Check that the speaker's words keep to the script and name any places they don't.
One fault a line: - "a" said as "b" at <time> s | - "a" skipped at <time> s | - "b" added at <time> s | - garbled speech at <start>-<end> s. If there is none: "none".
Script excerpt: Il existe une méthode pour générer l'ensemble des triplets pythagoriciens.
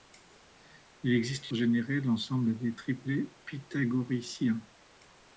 - "une méthode pour" skipped at 1.5 s